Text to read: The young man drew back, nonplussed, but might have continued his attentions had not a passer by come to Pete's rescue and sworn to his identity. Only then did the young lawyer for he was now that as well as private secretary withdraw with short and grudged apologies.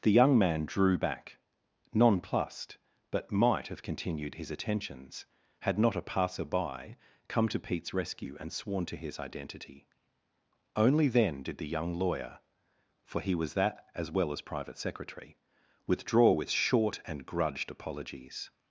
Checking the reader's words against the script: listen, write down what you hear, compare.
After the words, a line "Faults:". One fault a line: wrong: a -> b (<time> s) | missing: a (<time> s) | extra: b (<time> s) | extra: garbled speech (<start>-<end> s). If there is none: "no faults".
The young man drew back, nonplussed, but might have continued his attentions had not a passer by come to Pete's rescue and sworn to his identity. Only then did the young lawyer for he was that as well as private secretary withdraw with short and grudged apologies.
Faults:
missing: now (13.5 s)